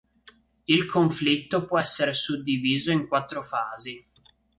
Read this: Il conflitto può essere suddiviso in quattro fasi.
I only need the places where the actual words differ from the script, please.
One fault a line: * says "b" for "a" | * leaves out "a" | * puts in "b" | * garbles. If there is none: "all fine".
all fine